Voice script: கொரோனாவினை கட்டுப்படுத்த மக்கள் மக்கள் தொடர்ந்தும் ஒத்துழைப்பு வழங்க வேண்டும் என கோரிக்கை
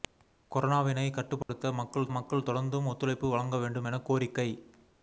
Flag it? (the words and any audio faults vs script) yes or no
yes